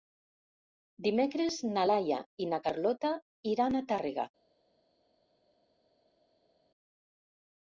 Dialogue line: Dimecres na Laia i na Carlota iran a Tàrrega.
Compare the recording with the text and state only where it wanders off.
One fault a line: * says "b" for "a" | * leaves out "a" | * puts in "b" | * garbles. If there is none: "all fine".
all fine